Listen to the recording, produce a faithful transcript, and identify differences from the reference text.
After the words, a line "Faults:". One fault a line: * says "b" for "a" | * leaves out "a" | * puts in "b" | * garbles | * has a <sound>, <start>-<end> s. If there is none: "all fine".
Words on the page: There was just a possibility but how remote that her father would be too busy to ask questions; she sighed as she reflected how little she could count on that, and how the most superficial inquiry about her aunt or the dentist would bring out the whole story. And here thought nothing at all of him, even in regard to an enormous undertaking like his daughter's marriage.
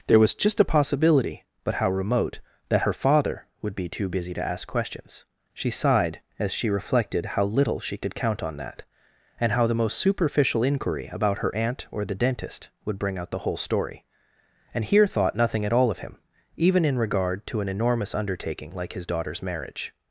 There was just a possibility but how remote that her father would be too busy to ask questions; she sighed as she reflected how little she could count on that, and how the most superficial inquiry about her aunt or the dentist would bring out the whole story. And here thought nothing at all of him, even in regard to an enormous undertaking like his daughter's marriage.
Faults:
all fine